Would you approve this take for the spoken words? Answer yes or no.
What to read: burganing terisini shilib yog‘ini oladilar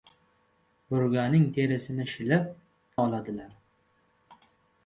no